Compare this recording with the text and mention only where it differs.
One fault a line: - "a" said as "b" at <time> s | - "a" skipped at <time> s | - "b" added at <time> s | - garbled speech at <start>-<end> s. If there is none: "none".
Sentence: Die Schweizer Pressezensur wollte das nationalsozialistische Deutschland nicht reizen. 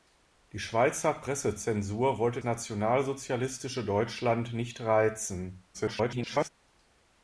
- "das" skipped at 2.4 s
- garbled speech at 5.7-6.5 s